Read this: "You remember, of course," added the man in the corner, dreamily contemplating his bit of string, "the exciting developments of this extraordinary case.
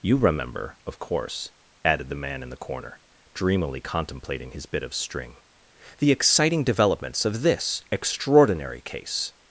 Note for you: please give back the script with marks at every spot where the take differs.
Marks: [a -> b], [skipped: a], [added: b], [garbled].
"You remember, of course," added the man in the corner, dreamily contemplating his bit of string, "the exciting developments of this extraordinary case.